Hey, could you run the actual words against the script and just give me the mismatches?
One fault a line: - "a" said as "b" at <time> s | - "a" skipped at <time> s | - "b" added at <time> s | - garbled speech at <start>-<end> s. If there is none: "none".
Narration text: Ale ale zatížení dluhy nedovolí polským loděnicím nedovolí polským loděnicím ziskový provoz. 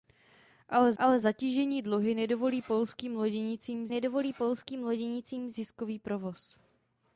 none